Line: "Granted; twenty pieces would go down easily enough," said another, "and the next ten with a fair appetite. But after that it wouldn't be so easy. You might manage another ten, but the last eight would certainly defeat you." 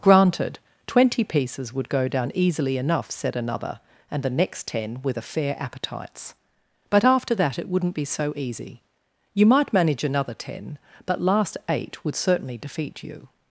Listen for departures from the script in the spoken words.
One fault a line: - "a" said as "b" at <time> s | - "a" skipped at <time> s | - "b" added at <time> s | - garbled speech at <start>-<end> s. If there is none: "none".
- "appetite" said as "appetites" at 5.6 s
- "the" skipped at 11.2 s